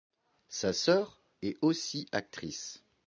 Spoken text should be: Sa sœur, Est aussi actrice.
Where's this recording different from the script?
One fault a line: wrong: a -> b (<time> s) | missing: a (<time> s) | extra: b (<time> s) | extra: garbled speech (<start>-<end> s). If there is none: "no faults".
no faults